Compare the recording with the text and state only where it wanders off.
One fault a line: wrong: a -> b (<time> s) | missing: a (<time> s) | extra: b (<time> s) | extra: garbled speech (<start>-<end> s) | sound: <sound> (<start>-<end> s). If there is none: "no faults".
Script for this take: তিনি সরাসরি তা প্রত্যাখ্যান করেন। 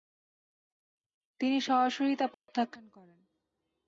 sound: dropout (2.3-2.5 s)